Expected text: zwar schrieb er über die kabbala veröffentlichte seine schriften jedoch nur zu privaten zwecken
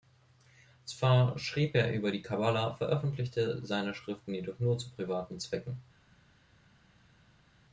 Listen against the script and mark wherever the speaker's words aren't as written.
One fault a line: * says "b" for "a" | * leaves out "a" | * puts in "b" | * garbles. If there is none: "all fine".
all fine